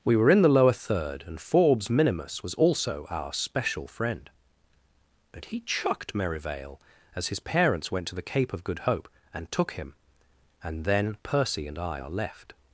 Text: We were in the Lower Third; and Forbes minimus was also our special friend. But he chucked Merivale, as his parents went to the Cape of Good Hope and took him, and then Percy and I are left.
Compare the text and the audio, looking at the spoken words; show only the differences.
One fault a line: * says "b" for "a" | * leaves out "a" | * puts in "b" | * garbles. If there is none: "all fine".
all fine